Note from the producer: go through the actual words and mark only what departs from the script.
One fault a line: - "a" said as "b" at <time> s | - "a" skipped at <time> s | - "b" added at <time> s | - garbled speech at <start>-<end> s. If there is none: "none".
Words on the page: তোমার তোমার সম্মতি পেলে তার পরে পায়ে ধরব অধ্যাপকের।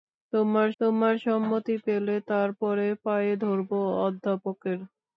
none